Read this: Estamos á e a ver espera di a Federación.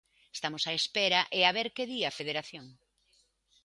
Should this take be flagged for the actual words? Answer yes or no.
yes